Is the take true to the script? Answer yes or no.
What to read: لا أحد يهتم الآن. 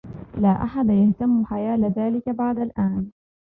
no